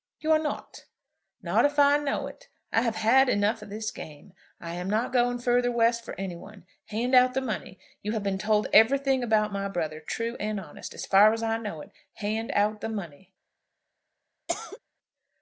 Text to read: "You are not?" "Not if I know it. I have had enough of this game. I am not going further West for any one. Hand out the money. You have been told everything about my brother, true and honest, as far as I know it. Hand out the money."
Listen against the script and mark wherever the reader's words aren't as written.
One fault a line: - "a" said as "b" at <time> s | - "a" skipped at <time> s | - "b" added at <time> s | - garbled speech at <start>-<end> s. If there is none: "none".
none